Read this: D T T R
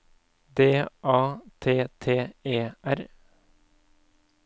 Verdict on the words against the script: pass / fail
fail